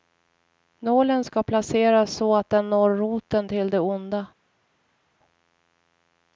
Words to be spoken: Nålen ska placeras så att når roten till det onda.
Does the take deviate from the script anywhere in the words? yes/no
yes